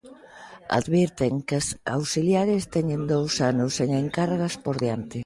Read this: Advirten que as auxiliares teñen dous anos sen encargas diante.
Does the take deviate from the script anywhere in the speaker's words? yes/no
yes